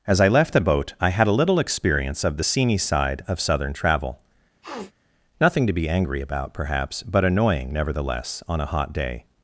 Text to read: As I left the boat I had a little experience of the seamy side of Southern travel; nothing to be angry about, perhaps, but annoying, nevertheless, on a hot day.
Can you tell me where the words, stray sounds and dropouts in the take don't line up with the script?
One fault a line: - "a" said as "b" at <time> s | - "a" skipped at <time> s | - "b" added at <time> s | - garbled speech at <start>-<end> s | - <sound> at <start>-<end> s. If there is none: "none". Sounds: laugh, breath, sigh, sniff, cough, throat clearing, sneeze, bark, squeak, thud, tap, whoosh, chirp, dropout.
- sniff at 4.6-4.9 s